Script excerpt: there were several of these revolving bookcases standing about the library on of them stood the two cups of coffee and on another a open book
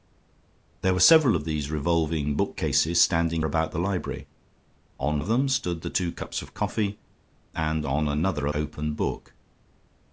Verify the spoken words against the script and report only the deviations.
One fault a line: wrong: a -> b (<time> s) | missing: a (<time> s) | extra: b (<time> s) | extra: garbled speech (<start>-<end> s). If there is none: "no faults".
no faults